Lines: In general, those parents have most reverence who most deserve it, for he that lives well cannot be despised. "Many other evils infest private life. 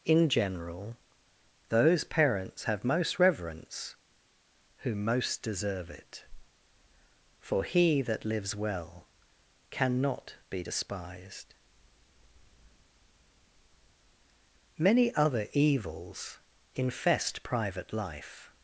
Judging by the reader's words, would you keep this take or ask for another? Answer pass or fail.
pass